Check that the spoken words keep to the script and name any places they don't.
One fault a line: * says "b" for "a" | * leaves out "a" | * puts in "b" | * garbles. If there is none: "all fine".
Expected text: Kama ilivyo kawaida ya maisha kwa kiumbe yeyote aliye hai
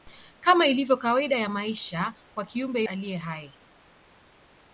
* leaves out "yeyote"